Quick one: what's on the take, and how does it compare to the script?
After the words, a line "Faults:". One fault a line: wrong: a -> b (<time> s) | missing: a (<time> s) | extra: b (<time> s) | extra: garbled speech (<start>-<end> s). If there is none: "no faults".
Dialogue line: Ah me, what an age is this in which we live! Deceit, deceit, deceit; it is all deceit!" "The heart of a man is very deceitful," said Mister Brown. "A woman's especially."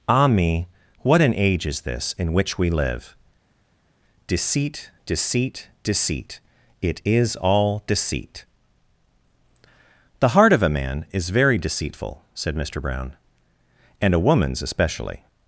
Ah me, what an age is this in which we live! Deceit, deceit, deceit; it is all deceit!" "The heart of a man is very deceitful," said Mister Brown. "And a woman's especially."
Faults:
extra: And (14.0 s)